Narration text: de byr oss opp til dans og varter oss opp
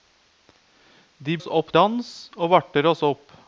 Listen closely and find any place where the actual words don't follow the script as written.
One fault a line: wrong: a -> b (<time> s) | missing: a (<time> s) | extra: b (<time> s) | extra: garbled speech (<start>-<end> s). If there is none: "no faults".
missing: byr (1.4 s)
missing: til (1.7 s)